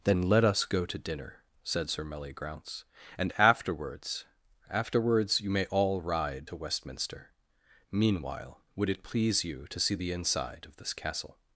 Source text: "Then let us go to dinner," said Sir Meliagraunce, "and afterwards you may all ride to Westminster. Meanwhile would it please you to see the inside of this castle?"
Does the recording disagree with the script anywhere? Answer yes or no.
yes